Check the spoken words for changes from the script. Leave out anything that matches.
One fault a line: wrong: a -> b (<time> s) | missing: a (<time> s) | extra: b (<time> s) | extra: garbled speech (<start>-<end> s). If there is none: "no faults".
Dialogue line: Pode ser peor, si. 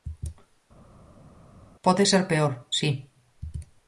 no faults